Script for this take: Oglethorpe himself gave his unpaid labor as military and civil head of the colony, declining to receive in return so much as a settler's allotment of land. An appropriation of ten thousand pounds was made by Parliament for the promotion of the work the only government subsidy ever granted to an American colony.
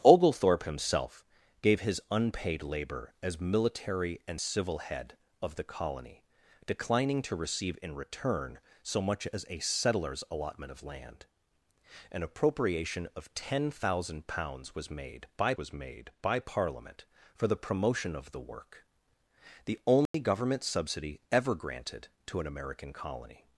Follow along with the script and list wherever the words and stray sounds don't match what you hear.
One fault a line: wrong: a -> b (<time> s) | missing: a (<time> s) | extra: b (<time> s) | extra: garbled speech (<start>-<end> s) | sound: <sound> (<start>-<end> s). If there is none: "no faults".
extra: was made by (15.5 s)
sound: dropout (20.1-20.1 s)